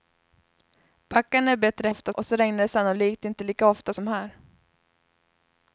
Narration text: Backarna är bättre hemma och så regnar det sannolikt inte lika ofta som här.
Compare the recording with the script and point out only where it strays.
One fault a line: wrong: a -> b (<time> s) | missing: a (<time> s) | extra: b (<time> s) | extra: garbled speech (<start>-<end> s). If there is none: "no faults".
wrong: hemma -> ofta (1.9 s)